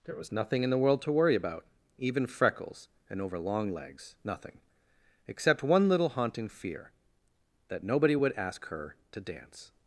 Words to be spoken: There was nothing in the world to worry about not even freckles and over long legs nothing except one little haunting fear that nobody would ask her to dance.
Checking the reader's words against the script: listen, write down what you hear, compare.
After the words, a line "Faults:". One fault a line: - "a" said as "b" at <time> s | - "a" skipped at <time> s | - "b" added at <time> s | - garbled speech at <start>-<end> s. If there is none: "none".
There was nothing in the world to worry about even freckles and over long legs nothing except one little haunting fear that nobody would ask her to dance.
Faults:
- "not" skipped at 1.7 s